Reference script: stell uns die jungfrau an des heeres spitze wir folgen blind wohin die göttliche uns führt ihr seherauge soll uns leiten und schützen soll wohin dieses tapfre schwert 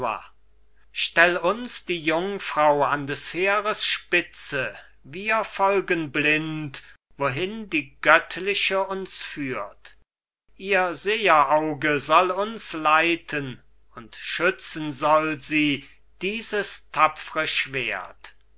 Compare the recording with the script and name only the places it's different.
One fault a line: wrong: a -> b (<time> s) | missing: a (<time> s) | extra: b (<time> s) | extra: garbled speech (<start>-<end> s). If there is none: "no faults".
wrong: wohin -> sie (15.4 s)